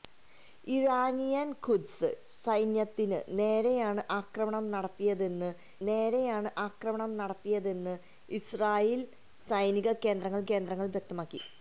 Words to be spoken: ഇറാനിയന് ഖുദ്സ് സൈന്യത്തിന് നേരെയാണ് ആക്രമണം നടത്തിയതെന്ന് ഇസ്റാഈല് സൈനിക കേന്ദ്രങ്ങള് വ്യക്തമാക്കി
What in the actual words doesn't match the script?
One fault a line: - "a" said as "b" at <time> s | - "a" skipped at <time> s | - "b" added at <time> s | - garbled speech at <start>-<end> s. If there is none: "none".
- "നേരെയാണ് ആക്രമണം നടത്തിയതെന്ന്" added at 5.9 s
- "കേന്ദ്രങ്ങള്" added at 10.5 s